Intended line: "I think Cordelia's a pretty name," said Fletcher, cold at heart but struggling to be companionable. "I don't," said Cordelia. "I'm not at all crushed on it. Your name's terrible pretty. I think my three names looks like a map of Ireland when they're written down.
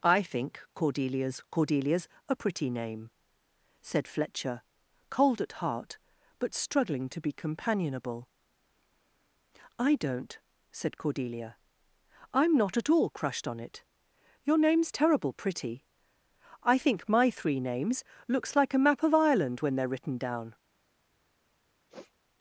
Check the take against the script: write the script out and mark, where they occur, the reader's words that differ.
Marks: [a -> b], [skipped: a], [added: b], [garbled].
"I think Cordelia's [added: Cordelia's] a pretty name," said Fletcher, cold at heart but struggling to be companionable. "I don't," said Cordelia. "I'm not at all crushed on it. Your name's terrible pretty. I think my three names looks like a map of Ireland when they're written down.